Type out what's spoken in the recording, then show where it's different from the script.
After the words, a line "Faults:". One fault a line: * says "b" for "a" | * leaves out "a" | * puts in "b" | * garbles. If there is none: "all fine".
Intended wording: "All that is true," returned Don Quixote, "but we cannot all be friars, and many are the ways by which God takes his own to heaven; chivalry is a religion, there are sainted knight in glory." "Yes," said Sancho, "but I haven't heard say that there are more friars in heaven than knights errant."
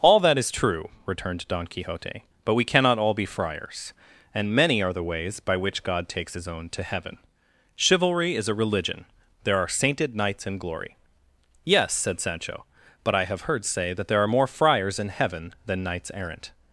"All that is true," returned Don Quixote, "but we cannot all be friars, and many are the ways by which God takes his own to heaven; chivalry is a religion, there are sainted knights in glory." "Yes," said Sancho, "but I have heard say that there are more friars in heaven than knights errant."
Faults:
* says "knights" for "knight"
* says "have" for "haven't"